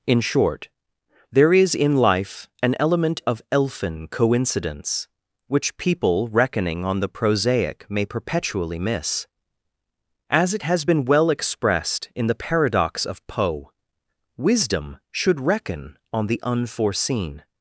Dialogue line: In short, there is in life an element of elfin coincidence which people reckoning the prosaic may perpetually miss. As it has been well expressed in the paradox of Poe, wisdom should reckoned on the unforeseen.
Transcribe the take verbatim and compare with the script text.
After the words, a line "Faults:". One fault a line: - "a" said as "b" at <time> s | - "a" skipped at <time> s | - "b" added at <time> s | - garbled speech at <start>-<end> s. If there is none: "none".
In short, there is in life an element of elfin coincidence which people reckoning on the prosaic may perpetually miss. As it has been well expressed in the paradox of Poe, wisdom should reckon on the unforeseen.
Faults:
- "on" added at 6.8 s
- "reckoned" said as "reckon" at 15.4 s